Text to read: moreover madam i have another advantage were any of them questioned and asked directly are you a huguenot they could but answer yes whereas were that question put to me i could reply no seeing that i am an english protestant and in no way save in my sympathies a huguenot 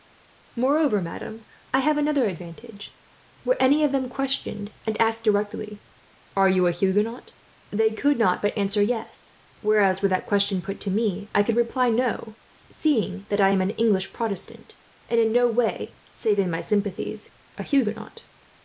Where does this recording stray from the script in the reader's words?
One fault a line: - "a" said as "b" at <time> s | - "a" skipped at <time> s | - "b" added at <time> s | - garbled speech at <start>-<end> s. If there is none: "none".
- "not" added at 8.2 s